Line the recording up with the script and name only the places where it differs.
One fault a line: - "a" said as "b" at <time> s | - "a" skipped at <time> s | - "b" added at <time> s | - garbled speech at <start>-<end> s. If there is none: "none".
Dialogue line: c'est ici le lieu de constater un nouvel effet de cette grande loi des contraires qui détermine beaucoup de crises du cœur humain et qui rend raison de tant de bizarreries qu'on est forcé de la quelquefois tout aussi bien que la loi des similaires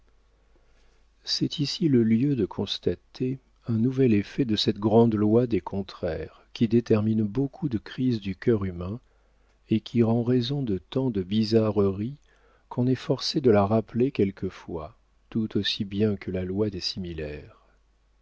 - "rappeler" added at 13.7 s